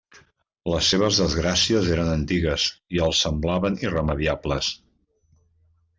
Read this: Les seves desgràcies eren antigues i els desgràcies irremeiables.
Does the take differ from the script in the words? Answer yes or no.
yes